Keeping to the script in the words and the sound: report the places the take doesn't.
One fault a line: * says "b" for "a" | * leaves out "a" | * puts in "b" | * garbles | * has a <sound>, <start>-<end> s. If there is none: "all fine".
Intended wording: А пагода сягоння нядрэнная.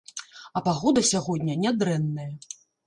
all fine